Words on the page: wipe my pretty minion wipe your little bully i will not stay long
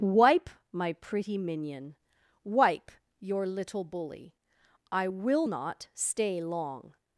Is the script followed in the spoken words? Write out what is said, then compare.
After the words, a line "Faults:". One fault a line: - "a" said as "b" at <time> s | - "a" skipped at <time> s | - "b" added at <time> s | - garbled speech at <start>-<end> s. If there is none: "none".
wipe my pretty minion wipe your little bully i will not stay long
Faults:
none